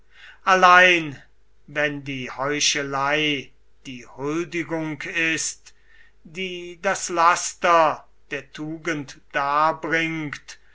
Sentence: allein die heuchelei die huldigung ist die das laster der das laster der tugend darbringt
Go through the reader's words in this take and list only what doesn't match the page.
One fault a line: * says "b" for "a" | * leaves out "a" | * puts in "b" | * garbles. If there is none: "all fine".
* puts in "wenn"
* leaves out "das laster der"